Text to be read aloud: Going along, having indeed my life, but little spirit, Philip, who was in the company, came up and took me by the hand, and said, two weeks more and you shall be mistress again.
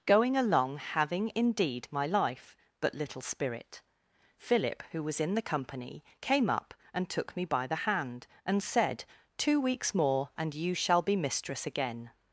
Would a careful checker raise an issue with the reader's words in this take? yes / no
no